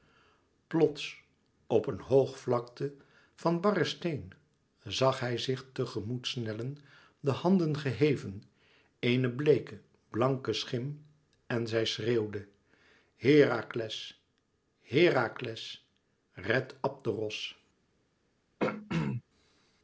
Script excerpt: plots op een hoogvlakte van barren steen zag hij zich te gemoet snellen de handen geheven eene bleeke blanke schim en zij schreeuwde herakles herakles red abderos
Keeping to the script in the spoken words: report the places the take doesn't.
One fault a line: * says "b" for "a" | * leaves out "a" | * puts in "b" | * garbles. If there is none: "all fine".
all fine